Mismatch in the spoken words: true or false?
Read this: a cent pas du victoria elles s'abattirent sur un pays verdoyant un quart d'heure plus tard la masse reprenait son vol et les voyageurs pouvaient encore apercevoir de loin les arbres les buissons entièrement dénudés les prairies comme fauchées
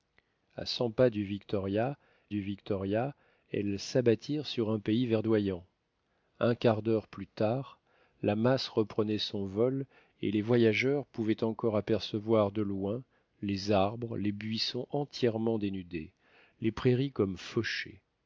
true